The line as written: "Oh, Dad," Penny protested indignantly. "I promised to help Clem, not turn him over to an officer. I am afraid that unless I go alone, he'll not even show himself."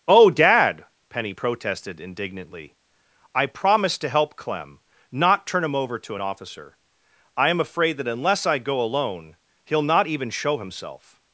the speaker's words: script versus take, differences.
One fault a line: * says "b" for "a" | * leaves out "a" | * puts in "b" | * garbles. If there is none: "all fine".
all fine